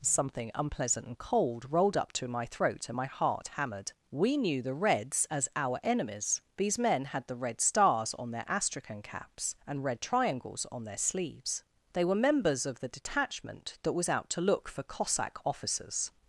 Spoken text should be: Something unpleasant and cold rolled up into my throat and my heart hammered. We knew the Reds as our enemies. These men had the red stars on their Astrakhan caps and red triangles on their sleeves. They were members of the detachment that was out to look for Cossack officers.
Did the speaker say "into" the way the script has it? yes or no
no